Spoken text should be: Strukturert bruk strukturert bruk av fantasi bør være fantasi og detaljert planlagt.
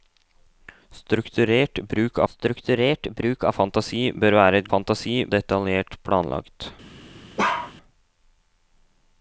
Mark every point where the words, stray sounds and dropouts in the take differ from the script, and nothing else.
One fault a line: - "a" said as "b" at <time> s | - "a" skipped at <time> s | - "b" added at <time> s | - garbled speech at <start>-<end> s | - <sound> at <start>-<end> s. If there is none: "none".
- bark at 7.4-7.7 s